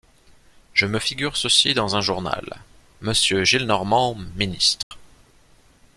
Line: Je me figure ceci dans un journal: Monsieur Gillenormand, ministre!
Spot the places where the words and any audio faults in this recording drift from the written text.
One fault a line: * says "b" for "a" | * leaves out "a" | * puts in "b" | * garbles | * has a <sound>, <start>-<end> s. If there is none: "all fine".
* has a dropout, 4.8-4.9 s